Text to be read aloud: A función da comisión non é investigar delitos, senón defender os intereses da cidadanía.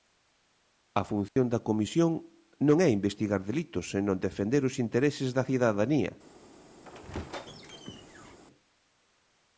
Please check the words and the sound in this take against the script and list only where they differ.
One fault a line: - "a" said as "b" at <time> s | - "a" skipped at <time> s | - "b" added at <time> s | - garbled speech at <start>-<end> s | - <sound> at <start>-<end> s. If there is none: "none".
- dropout at 1.3-1.4 s
- squeak at 6.8-8.4 s